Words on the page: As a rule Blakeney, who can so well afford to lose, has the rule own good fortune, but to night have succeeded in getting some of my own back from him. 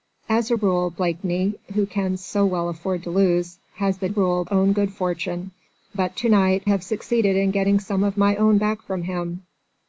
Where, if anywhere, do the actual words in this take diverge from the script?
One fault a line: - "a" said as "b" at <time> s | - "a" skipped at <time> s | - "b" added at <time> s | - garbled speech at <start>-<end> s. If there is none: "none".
none